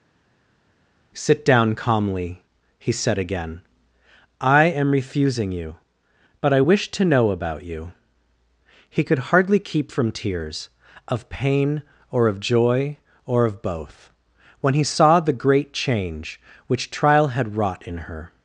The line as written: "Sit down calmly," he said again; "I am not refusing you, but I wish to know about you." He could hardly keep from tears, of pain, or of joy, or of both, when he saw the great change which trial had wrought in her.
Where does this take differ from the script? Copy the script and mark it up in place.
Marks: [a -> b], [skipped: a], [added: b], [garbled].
"Sit down calmly," he said again; "I am [skipped: not] refusing you, but I wish to know about you." He could hardly keep from tears, of pain, or of joy, or of both, when he saw the great change which trial had wrought in her.